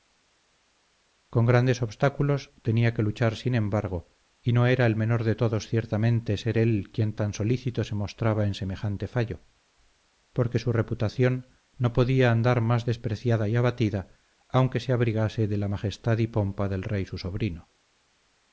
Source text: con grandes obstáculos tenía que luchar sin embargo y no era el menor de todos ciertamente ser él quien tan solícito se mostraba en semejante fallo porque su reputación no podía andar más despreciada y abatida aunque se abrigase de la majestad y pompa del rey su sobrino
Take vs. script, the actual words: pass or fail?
pass